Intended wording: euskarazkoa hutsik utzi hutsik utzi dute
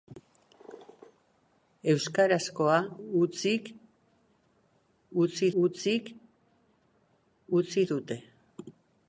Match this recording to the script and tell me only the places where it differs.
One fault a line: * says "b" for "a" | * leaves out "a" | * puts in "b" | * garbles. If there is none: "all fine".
all fine